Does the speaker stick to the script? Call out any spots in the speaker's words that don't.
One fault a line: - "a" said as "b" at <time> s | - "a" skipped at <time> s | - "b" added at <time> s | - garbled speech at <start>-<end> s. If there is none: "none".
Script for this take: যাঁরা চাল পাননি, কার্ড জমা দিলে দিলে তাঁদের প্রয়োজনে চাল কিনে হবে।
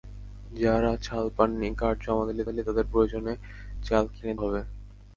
none